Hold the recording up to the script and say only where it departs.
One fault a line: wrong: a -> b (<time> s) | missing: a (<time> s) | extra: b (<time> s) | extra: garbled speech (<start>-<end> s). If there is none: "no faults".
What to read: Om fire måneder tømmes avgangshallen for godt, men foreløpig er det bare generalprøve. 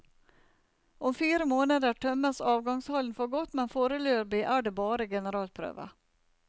no faults